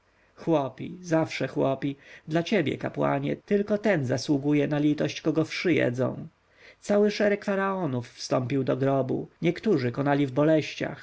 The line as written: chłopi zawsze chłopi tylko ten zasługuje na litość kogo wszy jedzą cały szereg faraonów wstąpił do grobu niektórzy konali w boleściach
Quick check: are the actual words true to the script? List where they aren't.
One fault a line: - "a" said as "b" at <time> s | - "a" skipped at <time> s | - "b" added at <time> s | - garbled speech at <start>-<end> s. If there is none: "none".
- "dla ciebie kapłanie" added at 2.3 s